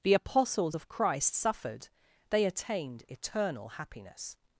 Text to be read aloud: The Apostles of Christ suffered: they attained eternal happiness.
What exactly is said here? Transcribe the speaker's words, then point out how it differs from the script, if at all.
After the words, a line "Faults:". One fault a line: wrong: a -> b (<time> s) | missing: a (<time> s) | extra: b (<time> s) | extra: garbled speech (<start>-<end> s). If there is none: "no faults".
The Apostles of Christ suffered: they attained eternal happiness.
Faults:
no faults